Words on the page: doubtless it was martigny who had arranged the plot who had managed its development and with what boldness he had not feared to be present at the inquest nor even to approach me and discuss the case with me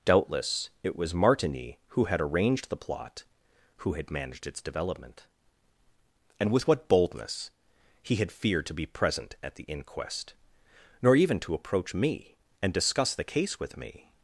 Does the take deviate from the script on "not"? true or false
true